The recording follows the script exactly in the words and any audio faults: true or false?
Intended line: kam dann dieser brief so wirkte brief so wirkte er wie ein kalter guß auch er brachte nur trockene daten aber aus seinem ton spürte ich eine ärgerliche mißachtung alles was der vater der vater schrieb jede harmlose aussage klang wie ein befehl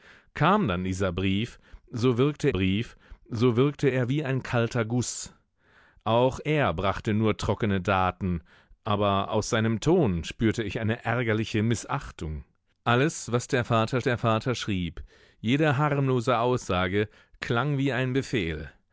true